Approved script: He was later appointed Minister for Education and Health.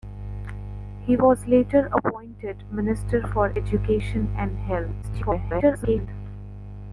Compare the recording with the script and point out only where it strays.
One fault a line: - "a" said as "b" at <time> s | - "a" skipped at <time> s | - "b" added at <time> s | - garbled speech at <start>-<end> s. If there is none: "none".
- garbled speech at 5.0-6.1 s